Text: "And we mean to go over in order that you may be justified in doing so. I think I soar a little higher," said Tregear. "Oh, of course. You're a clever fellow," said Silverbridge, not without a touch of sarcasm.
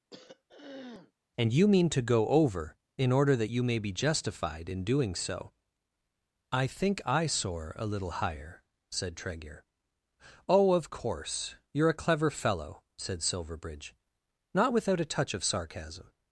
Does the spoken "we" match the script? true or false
false